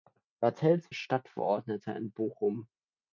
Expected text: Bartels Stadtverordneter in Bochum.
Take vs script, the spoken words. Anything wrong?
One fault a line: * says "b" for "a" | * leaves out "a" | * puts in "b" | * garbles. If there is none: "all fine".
all fine